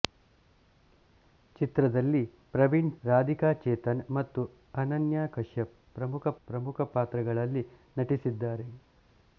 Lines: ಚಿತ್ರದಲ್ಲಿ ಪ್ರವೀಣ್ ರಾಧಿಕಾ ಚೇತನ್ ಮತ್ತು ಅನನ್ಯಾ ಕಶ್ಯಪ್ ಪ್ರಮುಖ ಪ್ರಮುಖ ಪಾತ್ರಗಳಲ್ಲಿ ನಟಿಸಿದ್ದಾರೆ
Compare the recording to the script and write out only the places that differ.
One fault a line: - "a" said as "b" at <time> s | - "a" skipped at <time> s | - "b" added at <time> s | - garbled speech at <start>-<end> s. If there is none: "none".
none